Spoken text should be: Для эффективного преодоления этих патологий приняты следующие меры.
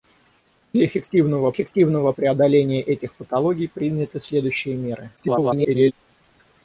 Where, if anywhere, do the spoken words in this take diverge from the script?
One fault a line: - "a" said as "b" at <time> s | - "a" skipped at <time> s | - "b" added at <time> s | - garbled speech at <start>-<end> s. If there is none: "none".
- "эффективного" added at 1.5 s
- garbled speech at 5.2-5.9 s